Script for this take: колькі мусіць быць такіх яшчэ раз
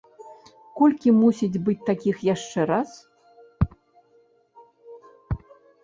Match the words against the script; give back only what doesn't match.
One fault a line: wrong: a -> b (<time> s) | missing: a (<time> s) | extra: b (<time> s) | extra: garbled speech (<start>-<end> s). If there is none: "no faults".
no faults